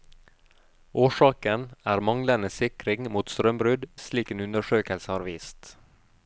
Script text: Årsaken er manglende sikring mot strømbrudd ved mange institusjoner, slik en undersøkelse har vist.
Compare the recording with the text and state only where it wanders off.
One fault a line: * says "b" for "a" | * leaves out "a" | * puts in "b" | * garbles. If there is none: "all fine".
* leaves out "ved mange institusjoner"